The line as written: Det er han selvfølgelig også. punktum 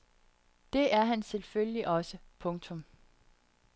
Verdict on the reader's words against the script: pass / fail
pass